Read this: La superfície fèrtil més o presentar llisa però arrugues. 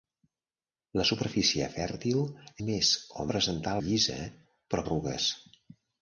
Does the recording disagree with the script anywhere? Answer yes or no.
no